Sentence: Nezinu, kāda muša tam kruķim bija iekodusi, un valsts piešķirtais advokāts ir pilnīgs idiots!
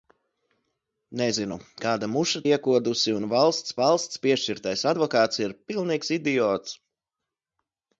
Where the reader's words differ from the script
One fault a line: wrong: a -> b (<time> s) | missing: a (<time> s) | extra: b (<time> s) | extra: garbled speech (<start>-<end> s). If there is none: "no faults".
missing: tam kruķim bija (2.4 s)
extra: valsts (3.8 s)